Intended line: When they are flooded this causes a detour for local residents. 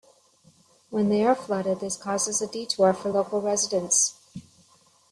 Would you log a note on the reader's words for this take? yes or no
no